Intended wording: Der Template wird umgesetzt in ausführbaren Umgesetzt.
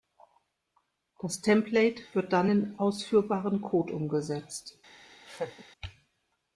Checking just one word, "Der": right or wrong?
wrong